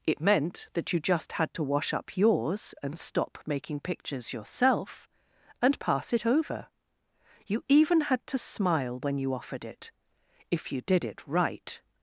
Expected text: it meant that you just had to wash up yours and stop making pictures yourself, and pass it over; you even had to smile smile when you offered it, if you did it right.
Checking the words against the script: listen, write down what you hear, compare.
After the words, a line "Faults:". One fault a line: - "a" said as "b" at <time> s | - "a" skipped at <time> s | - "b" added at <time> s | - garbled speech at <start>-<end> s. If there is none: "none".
it meant that you just had to wash up yours and stop making pictures yourself, and pass it over; you even had to smile when you offered it, if you did it right.
Faults:
- "smile" skipped at 9.0 s